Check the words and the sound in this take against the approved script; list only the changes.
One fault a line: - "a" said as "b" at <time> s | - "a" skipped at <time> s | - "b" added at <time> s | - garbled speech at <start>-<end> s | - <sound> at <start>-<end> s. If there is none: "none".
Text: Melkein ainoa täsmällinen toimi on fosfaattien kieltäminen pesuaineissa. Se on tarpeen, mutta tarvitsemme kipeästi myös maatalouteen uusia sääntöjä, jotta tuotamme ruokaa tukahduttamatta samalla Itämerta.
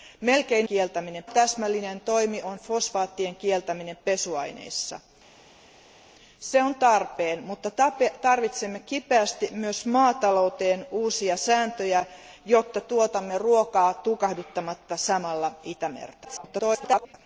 - "ainoa" said as "kieltäminen" at 0.6 s
- garbled speech at 16.2-17.1 s